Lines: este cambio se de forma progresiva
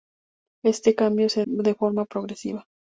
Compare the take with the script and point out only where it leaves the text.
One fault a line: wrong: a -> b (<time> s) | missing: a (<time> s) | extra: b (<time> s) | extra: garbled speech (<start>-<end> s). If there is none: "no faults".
no faults